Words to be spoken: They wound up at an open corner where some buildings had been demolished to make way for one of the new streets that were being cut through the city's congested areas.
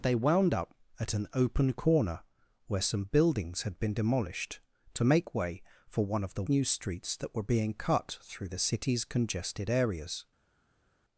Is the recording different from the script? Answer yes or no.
no